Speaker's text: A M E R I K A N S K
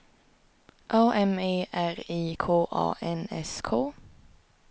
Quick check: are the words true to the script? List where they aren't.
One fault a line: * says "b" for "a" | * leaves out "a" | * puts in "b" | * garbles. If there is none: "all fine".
all fine